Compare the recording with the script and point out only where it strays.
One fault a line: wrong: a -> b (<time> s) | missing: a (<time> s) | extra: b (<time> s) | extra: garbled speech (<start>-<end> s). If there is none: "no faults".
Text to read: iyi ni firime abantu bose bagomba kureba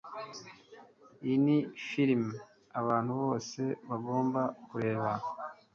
no faults